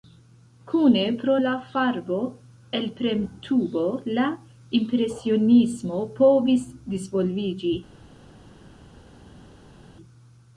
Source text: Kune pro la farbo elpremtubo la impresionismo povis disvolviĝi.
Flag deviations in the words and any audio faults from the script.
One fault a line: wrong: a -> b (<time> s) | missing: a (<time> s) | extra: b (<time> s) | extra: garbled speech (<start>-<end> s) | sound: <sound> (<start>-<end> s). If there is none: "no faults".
no faults